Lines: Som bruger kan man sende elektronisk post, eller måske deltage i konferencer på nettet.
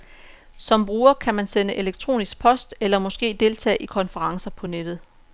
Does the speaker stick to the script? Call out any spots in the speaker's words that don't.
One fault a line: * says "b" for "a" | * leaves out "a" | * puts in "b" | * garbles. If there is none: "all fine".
all fine